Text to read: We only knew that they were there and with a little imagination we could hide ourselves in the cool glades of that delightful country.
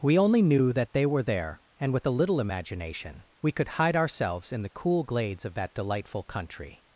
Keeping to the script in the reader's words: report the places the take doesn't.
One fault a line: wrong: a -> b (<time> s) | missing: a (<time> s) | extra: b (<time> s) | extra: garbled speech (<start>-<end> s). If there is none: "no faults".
no faults